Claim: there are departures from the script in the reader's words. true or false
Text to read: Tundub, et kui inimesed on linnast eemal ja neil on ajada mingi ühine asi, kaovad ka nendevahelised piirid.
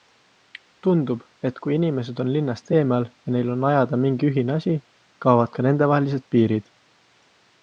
false